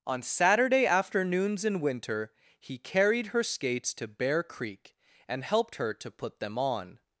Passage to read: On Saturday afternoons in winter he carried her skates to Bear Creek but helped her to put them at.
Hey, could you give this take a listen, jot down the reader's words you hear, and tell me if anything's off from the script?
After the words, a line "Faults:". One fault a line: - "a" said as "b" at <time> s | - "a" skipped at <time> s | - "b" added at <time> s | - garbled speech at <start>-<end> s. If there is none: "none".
On Saturday afternoons in winter he carried her skates to Bear Creek and helped her to put them on.
Faults:
- "but" said as "and" at 5.3 s
- "at" said as "on" at 6.6 s